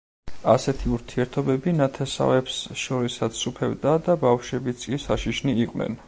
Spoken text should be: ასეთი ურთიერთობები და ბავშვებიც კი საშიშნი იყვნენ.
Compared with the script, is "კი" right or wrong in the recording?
right